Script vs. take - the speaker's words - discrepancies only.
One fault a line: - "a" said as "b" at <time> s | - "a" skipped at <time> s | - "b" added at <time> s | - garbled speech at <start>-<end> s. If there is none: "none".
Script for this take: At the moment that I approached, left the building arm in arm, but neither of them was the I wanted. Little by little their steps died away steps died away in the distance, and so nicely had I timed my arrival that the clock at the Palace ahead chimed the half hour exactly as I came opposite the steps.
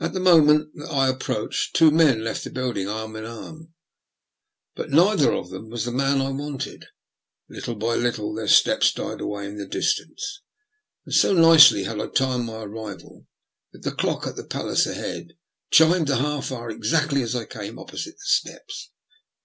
- "two men" added at 1.8 s
- "man" added at 5.9 s
- "steps died away" skipped at 9.5 s